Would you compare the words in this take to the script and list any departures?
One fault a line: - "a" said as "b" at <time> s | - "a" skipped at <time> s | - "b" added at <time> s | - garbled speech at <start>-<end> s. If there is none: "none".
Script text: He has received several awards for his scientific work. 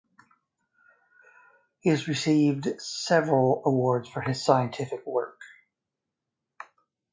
none